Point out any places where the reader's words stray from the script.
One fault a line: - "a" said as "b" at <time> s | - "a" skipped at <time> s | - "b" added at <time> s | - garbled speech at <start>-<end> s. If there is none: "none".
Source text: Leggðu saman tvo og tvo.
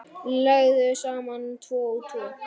none